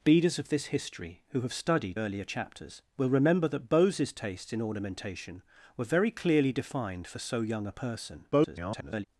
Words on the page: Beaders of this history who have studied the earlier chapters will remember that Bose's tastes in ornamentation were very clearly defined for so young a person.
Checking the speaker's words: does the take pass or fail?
fail